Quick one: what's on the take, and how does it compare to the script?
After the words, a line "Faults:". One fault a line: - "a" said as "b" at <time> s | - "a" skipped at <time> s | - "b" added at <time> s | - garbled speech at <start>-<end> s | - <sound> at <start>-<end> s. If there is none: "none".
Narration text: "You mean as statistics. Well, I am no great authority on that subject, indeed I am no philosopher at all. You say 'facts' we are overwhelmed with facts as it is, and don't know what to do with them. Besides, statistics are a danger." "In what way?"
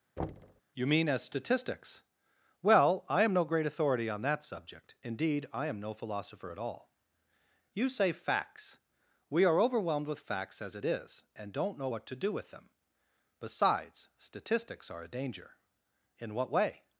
"You mean as statistics. Well, I am no great authority on that subject, indeed I am no philosopher at all. You say 'facts' we are overwhelmed with facts as it is, and don't know what to do with them. Besides, statistics are a danger." "In what way?"
Faults:
- thud at 0.2-0.6 s